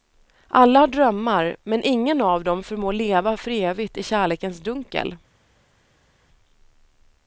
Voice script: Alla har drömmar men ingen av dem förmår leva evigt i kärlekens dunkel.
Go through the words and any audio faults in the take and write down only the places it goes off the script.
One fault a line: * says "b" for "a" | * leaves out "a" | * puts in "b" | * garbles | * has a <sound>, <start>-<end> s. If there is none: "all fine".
* puts in "för"